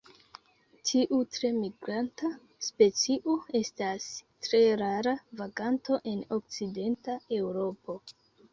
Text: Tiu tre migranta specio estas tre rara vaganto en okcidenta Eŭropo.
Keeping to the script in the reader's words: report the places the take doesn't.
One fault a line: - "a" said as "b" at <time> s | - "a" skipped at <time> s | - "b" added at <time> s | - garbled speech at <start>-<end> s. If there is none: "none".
none